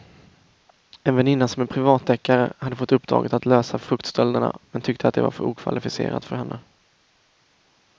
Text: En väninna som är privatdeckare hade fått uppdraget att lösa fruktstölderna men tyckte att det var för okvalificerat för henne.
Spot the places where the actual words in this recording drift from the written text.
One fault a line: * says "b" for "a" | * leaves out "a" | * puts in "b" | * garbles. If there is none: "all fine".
all fine